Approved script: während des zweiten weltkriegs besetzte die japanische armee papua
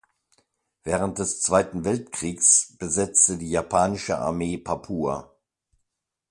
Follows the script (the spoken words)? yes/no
yes